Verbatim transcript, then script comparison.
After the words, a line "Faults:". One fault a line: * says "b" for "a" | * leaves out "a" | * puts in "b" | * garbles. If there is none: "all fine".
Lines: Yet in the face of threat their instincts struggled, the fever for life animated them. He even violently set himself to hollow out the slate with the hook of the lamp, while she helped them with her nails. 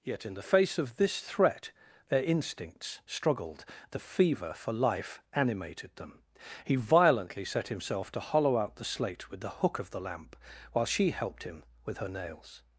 Yet in the face of this threat their instincts struggled, the fever for life animated them. He violently set himself to hollow out the slate with the hook of the lamp, while she helped him with her nails.
Faults:
* puts in "this"
* leaves out "even"
* says "him" for "them"